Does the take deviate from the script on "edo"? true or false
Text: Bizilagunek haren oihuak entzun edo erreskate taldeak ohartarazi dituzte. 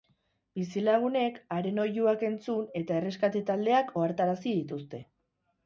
true